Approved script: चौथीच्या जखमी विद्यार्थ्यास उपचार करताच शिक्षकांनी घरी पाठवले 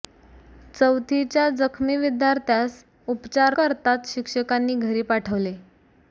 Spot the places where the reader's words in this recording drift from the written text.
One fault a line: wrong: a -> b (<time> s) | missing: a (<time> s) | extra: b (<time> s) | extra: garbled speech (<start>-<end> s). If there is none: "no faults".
no faults